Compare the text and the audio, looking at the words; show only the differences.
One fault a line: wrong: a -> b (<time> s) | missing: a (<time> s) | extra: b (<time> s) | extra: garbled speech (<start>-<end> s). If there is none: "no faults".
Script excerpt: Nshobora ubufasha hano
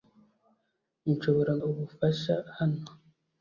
no faults